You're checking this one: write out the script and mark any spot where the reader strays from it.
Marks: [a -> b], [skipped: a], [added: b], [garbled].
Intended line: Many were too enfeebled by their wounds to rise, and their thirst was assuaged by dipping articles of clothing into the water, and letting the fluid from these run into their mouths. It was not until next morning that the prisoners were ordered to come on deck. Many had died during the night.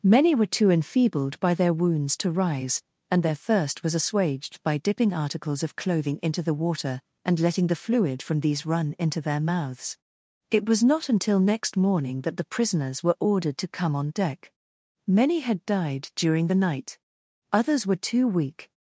Many were too enfeebled by their wounds to rise, and their thirst was assuaged by dipping articles of clothing into the water, and letting the fluid from these run into their mouths. It was not until next morning that the prisoners were ordered to come on deck. Many had died during the night. [added: Others were too weak]